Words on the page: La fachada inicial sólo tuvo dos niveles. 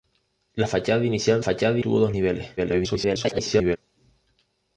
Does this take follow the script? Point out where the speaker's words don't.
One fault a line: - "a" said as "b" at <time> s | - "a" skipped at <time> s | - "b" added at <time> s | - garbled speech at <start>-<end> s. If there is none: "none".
- "sólo" said as "fachada" at 1.4 s
- garbled speech at 2.6-3.8 s